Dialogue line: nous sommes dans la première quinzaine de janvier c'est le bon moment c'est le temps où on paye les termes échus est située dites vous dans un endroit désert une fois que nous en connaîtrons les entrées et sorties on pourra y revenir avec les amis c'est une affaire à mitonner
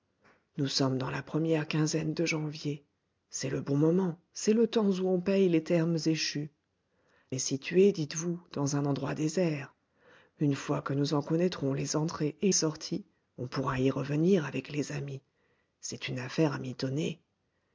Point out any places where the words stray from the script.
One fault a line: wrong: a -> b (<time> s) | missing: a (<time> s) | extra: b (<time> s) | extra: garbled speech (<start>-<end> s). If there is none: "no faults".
no faults